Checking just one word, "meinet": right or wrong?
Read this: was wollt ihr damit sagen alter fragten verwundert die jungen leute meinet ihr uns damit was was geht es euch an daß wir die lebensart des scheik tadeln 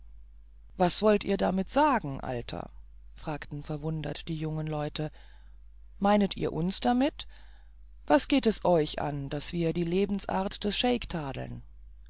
right